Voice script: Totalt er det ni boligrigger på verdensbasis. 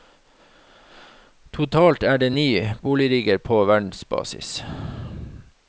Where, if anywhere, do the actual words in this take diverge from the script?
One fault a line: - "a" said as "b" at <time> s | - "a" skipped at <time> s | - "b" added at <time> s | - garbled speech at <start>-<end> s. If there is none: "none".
none